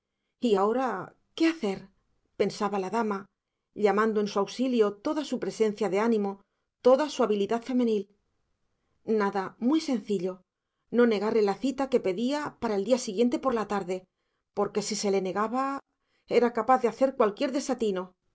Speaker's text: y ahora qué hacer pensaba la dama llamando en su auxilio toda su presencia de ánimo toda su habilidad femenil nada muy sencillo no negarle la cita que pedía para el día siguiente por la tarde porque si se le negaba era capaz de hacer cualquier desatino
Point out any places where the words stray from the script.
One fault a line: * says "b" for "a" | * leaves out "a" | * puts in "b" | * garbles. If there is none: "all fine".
all fine